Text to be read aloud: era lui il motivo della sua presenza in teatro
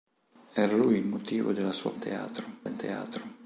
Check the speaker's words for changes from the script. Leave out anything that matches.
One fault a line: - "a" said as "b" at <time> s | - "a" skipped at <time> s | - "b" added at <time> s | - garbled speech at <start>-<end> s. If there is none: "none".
- "presenza" said as "teatro" at 2.0 s